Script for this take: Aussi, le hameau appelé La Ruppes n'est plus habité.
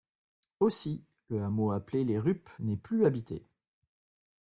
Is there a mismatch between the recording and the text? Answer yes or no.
yes